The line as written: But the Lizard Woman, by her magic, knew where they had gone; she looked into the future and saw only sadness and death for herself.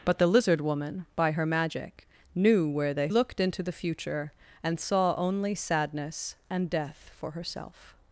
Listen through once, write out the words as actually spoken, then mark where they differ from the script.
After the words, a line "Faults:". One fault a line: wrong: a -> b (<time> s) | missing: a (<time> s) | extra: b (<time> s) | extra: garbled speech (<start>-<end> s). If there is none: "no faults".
But the Lizard Woman, by her magic, knew where they looked into the future and saw only sadness and death for herself.
Faults:
missing: had gone she (3.1 s)